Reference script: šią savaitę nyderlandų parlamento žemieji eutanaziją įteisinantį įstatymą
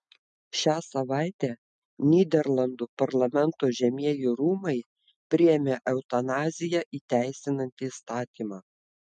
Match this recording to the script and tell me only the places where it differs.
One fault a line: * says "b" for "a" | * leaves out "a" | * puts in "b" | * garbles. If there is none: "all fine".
* puts in "rūmai priėmė"